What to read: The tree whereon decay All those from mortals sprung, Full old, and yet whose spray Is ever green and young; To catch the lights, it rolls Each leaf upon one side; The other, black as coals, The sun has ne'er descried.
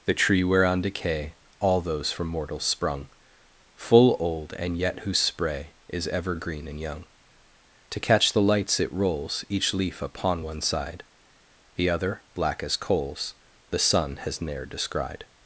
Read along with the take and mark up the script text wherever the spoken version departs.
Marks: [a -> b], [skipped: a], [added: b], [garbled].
The tree whereon decay All those from mortals sprung, Full old, and yet whose spray Is ever green and young; To catch the lights, it rolls Each leaf upon one side; The other, black as coals, The sun has ne'er descried.